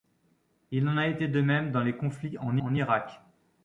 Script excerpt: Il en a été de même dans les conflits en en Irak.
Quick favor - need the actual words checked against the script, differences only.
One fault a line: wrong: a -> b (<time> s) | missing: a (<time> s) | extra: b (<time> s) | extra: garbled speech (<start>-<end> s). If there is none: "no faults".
no faults